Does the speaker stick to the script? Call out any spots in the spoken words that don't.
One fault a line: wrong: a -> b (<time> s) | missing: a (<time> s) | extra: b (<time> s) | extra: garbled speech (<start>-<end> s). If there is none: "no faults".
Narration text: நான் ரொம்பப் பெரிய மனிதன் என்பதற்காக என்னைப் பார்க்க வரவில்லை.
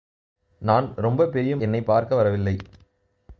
missing: மனிதன் என்பதற்காக (1.6 s)